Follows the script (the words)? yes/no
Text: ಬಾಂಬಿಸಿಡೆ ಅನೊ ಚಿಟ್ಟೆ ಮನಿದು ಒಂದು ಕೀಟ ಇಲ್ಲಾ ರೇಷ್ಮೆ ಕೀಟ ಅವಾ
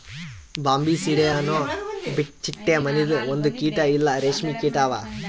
yes